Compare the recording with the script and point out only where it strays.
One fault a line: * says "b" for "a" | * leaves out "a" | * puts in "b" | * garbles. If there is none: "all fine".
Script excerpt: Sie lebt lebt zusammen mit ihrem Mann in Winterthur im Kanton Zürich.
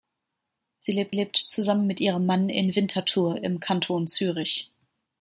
all fine